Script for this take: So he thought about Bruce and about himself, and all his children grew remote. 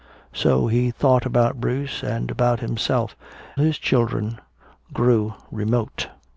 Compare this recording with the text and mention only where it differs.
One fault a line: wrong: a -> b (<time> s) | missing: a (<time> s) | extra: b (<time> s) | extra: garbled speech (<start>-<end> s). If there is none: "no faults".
missing: and all (3.2 s)